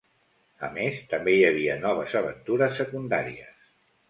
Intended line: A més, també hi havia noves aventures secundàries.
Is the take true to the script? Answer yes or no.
yes